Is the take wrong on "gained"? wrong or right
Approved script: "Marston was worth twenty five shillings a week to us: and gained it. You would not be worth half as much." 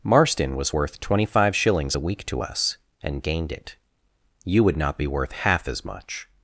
right